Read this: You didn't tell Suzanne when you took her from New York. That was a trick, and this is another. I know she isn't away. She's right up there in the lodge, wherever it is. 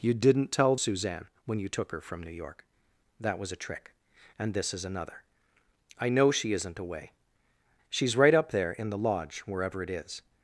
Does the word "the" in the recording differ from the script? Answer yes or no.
no